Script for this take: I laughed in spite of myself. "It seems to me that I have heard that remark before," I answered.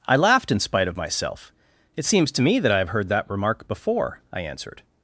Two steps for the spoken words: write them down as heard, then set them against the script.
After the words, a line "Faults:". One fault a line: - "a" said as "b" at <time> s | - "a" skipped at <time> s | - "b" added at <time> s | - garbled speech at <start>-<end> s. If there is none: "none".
I laughed in spite of myself. "It seems to me that I have heard that remark before," I answered.
Faults:
none